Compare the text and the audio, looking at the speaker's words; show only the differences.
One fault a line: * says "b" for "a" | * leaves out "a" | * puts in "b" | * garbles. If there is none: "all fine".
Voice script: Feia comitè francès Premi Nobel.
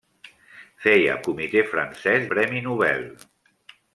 all fine